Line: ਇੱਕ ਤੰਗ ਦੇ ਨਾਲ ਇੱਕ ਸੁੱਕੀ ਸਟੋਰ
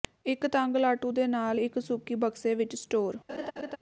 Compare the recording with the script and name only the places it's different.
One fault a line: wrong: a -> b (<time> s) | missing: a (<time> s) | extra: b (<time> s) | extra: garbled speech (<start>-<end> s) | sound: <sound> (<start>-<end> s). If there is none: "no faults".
extra: ਲਾਟੂ (0.8 s)
extra: ਬਕਸੇ ਵਿੱਚ (2.2 s)
sound: laugh (3.3-3.8 s)